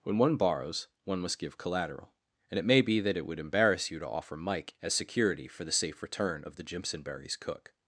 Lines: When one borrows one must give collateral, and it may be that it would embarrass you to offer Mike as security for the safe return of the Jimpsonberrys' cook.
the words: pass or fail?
pass